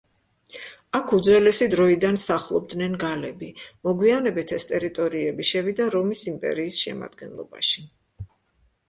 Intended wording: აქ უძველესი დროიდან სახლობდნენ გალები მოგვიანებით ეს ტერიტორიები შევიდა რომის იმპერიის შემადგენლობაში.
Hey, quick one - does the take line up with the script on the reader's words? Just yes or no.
yes